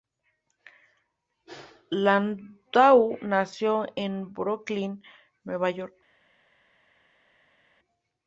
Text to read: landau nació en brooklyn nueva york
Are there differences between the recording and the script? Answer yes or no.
no